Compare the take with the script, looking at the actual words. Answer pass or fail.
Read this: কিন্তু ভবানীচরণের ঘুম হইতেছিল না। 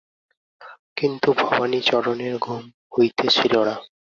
pass